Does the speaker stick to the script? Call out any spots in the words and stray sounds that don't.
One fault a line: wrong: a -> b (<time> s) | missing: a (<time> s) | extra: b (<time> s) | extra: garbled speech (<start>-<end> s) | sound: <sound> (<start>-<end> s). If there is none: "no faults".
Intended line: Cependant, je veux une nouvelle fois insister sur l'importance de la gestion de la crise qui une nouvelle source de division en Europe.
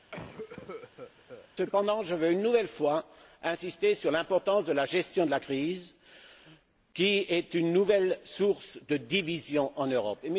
sound: cough (0.1-1.5 s)
extra: est (7.3 s)